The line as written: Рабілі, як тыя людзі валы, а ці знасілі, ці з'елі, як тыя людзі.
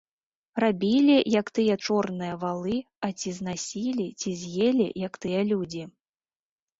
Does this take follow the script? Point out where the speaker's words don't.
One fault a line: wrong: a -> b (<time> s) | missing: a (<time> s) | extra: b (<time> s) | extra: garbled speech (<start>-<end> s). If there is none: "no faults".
wrong: людзі -> чорныя (1.8 s)